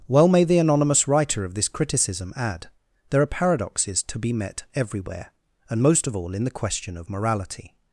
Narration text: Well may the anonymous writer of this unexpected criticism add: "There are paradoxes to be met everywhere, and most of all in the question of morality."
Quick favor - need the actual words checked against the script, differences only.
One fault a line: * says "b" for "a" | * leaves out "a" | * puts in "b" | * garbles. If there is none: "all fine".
* leaves out "unexpected"